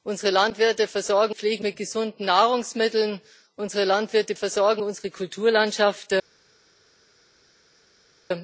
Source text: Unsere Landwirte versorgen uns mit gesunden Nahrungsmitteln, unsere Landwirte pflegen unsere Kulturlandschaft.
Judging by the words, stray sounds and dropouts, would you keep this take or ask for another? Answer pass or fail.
fail